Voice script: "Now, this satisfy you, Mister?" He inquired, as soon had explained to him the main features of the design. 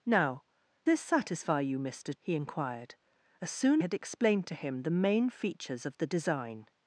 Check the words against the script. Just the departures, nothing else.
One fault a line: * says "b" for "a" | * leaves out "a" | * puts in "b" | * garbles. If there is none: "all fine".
all fine